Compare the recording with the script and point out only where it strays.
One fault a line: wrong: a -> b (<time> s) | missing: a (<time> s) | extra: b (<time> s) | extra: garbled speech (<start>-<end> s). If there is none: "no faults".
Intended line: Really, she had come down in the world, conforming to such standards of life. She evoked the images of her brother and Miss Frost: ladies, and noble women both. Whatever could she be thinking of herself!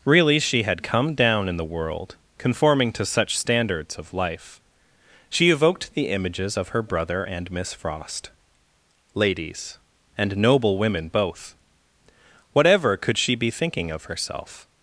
no faults